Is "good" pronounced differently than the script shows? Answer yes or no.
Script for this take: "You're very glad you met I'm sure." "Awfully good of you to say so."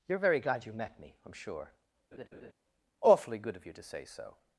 no